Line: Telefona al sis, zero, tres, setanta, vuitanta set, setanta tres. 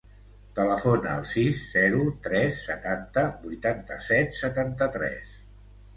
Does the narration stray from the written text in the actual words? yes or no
no